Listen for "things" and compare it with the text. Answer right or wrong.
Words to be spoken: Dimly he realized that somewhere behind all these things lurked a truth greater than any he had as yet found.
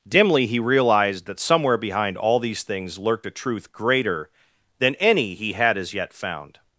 right